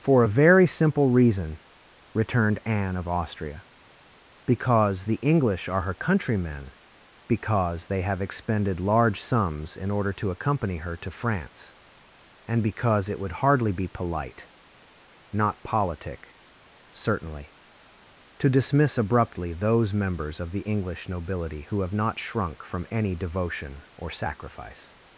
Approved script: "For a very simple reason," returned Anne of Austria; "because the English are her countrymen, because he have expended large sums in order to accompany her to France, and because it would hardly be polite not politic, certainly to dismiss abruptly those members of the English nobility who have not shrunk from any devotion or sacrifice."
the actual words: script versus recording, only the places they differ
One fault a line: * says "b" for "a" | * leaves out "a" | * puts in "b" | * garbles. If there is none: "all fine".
* says "they" for "he"